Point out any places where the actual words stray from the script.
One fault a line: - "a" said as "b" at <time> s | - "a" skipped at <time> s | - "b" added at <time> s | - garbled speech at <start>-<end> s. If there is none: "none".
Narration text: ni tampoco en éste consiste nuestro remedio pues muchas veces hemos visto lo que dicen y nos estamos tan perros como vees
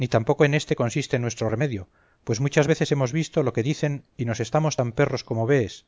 none